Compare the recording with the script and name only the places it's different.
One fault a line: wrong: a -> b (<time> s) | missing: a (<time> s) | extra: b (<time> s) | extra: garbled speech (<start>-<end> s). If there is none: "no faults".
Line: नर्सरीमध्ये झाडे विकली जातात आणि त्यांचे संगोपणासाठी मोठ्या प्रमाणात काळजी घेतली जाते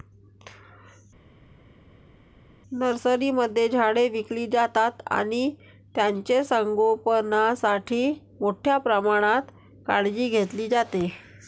no faults